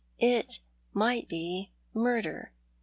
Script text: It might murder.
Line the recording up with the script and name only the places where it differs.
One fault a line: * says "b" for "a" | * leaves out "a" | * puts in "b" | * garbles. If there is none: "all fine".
* puts in "be"